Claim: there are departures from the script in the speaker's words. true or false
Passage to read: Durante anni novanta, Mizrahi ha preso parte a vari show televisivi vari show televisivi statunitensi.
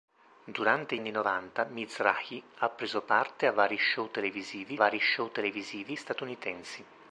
false